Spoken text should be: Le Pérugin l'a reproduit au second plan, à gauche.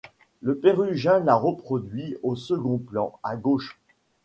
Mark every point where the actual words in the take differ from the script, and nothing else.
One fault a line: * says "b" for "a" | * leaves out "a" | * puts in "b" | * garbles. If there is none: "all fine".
all fine